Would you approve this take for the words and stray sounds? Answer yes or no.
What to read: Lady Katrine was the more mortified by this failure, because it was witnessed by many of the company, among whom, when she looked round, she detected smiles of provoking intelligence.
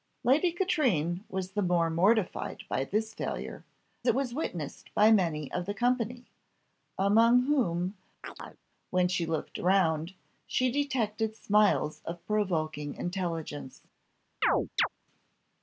no